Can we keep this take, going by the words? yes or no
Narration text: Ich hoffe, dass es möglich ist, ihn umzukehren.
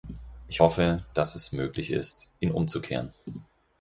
yes